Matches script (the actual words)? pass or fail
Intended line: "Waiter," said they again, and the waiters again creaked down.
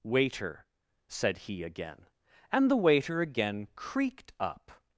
fail